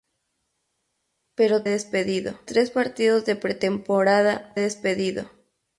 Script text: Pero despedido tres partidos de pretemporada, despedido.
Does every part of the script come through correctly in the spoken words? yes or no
yes